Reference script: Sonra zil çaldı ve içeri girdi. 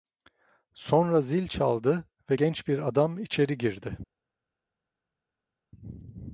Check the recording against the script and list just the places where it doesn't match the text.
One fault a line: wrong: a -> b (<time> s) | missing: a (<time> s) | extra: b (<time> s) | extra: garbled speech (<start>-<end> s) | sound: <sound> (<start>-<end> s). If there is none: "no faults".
extra: genç bir adam (2.3 s)